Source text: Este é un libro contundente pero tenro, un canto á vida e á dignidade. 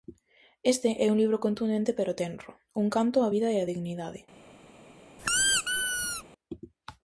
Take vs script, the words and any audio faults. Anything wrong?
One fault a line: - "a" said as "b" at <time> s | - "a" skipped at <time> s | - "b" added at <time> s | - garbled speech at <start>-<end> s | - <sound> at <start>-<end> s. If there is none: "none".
- squeak at 5.2-6.2 s